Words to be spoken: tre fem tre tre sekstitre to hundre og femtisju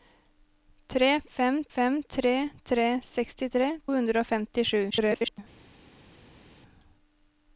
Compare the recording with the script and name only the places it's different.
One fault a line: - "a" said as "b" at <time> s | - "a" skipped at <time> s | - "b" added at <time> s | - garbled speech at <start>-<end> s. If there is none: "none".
- "fem" added at 1.7 s
- "to" skipped at 3.7 s
- garbled speech at 4.9-5.4 s